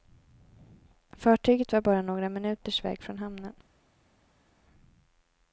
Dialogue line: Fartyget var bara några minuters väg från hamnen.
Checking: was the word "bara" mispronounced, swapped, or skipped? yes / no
no